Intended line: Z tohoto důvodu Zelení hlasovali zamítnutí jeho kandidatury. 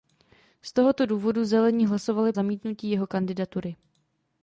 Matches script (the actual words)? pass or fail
pass